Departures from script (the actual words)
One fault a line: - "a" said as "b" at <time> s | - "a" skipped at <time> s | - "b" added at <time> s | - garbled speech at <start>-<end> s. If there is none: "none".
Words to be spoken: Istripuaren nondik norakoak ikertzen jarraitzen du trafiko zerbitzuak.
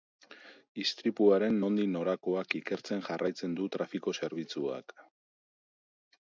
none